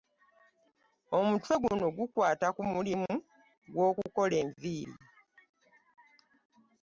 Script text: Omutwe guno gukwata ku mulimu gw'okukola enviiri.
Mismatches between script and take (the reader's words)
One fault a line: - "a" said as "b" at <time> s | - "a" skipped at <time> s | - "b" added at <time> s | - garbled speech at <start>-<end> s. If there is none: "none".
none